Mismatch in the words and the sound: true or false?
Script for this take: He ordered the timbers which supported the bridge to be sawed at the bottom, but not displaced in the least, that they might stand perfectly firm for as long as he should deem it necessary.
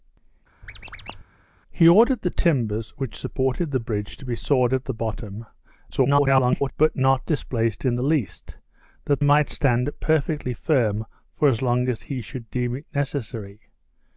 true